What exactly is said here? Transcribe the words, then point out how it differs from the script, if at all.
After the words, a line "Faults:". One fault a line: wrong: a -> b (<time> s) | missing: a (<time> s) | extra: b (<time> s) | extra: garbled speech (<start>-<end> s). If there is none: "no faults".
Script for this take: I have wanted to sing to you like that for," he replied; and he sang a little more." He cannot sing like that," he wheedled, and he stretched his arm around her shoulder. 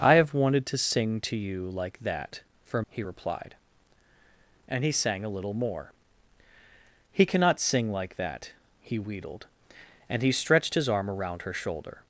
I have wanted to sing to you like that for," he replied; and he sang a little more." He cannot sing like that," he wheedled, and he stretched his arm around her shoulder.
Faults:
no faults